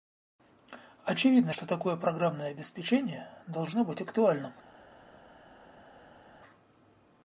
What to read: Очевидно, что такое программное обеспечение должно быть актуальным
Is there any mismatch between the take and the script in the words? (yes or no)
no